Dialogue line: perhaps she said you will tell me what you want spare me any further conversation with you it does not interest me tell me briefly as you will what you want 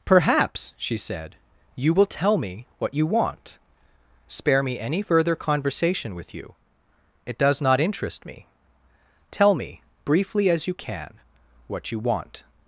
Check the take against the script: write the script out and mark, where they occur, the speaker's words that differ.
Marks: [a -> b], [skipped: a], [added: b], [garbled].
perhaps she said you will tell me what you want spare me any further conversation with you it does not interest me tell me briefly as you [will -> can] what you want